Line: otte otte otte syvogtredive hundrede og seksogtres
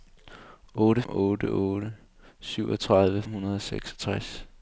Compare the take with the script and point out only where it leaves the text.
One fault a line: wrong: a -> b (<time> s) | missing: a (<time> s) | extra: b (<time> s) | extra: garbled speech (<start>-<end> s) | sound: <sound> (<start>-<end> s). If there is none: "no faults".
no faults